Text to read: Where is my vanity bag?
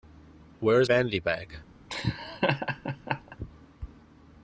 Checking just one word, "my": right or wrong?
wrong